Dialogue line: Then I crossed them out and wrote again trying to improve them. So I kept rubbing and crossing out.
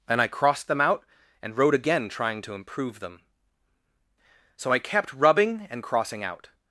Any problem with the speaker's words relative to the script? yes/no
no